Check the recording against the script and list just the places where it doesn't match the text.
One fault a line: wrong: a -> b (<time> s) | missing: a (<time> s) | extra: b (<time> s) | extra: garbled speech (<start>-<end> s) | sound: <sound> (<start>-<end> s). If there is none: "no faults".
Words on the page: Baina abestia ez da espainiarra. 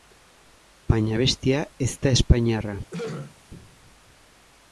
sound: throat clearing (2.9-3.4 s)